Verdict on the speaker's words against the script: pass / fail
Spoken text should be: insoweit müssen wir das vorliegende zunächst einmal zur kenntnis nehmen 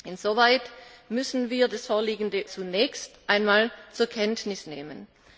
pass